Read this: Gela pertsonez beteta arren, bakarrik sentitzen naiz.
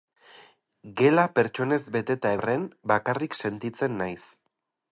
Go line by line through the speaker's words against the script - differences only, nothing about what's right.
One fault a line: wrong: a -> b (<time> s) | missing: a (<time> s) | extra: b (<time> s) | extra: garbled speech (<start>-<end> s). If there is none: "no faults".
no faults